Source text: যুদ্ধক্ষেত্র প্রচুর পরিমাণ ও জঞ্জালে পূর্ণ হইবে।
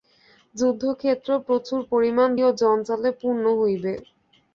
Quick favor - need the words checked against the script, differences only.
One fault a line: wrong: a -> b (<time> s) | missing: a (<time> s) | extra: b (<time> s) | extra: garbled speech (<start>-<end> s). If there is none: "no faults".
no faults